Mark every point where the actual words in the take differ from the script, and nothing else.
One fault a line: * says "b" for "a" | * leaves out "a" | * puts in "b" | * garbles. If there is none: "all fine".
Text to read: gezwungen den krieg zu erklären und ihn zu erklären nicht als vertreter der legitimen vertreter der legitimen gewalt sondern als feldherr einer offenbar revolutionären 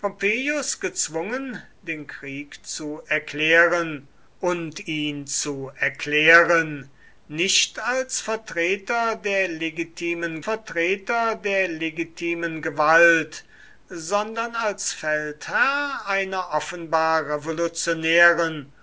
all fine